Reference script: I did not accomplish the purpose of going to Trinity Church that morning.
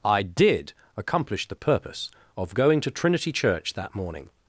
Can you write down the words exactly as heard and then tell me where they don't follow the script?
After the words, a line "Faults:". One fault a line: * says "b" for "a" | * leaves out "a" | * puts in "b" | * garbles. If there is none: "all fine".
I did accomplish the purpose of going to Trinity Church that morning.
Faults:
* leaves out "not"